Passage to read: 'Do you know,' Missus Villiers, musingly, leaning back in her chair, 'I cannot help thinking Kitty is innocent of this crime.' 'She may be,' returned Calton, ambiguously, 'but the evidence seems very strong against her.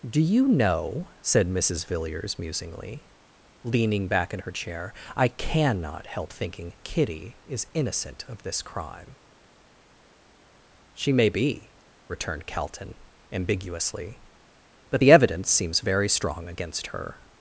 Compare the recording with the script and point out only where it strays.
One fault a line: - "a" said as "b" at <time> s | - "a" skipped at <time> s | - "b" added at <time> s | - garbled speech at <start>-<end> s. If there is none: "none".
- "said" added at 1.2 s